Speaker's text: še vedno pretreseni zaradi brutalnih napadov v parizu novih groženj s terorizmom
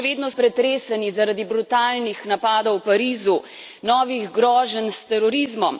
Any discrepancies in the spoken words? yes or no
no